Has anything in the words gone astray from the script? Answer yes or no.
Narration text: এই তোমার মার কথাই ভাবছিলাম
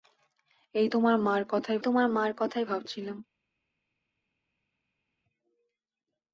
yes